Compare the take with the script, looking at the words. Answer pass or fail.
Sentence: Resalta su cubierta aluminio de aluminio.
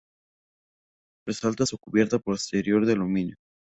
fail